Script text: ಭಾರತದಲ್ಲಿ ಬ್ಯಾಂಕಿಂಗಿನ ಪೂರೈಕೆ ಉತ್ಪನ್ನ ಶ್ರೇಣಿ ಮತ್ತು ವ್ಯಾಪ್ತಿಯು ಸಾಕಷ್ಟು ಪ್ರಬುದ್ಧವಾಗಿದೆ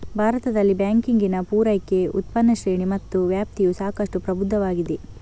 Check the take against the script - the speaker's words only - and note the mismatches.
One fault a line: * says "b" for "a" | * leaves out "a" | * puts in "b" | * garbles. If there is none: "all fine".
all fine